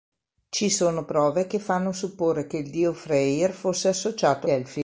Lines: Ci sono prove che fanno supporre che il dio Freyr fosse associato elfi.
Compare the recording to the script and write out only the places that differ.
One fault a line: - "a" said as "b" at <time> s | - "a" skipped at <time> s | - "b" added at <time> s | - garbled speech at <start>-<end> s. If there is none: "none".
none